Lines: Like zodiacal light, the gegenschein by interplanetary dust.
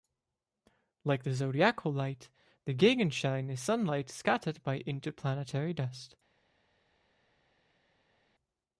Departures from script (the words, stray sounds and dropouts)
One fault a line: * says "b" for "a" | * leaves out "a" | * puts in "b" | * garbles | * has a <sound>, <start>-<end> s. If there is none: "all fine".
* puts in "the"
* puts in "is sunlight scattered"